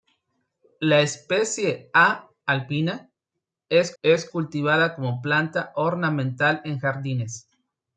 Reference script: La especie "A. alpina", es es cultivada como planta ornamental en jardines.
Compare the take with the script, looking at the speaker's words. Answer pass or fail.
pass